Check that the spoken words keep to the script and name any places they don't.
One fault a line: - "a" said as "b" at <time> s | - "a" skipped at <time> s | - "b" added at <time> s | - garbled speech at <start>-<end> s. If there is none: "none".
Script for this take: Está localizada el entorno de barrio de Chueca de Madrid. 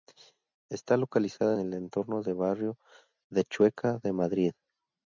none